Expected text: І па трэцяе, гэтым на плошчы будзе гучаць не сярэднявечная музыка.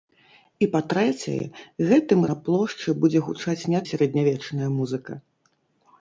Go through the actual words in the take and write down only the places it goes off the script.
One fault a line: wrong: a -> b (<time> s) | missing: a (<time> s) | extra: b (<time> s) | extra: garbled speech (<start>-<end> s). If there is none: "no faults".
no faults